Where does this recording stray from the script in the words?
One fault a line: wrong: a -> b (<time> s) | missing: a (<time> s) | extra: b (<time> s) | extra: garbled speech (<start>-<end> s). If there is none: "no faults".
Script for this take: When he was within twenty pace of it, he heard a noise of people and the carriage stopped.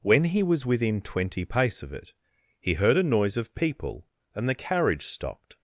no faults